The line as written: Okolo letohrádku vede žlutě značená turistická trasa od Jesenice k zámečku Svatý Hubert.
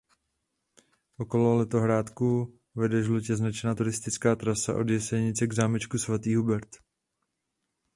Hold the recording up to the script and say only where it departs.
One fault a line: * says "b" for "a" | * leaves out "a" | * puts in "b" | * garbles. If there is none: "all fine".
all fine